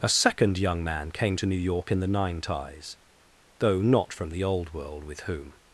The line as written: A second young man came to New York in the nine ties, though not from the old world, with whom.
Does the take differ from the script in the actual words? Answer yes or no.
no